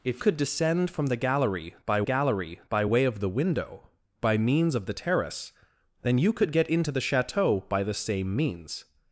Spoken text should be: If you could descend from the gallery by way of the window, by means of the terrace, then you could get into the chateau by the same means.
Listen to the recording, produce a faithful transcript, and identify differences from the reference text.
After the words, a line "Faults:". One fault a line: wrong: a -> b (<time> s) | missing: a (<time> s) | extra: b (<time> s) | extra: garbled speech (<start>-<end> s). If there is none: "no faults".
If could descend from the gallery by gallery by way of the window, by means of the terrace, then you could get into the chateau by the same means.
Faults:
missing: you (0.2 s)
extra: gallery by (2.0 s)